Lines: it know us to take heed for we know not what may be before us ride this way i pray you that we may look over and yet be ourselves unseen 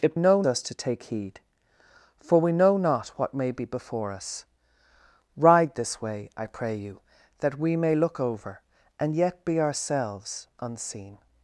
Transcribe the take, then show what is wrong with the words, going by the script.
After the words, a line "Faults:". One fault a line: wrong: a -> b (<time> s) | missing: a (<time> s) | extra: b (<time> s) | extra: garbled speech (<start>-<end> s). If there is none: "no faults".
it know us to take heed for we know not what may be before us ride this way i pray you that we may look over and yet be ourselves unseen
Faults:
no faults